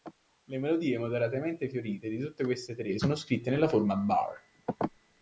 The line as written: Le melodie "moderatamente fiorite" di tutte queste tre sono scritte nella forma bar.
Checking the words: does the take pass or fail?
pass